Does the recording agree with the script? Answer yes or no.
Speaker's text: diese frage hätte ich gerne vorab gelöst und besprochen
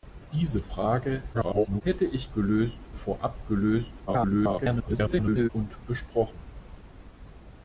no